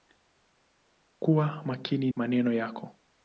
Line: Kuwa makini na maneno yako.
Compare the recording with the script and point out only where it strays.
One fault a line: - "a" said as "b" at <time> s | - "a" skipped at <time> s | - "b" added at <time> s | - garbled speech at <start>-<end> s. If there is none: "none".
- "na" skipped at 2.1 s